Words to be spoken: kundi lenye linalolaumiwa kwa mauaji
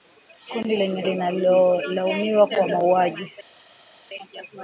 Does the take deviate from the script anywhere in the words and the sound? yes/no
no